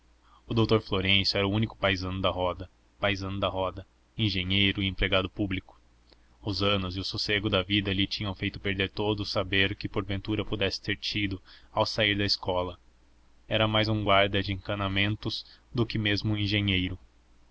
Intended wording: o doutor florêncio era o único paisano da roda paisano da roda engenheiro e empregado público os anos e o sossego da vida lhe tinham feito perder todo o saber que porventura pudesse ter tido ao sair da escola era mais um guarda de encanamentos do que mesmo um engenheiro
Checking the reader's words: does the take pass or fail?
pass